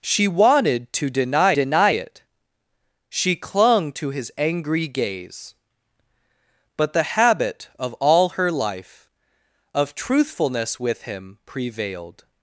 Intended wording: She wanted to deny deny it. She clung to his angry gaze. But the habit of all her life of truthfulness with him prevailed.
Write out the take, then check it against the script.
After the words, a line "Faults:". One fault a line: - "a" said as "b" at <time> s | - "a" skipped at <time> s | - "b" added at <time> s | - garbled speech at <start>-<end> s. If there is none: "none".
She wanted to deny deny it. She clung to his angry gaze. But the habit of all her life of truthfulness with him prevailed.
Faults:
none